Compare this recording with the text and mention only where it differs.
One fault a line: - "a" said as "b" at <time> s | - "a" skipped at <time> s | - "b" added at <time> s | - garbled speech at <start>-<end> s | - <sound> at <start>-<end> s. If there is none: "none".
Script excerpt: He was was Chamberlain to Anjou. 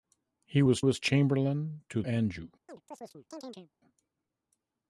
- chirp at 2.7-3.7 s